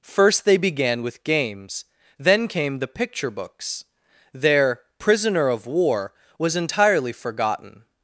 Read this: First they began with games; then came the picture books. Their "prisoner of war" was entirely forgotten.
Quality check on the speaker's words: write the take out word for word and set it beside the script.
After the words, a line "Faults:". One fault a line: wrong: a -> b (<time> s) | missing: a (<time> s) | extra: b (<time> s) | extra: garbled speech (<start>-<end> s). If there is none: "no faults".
First they began with games; then came the picture books. Their "prisoner of war" was entirely forgotten.
Faults:
no faults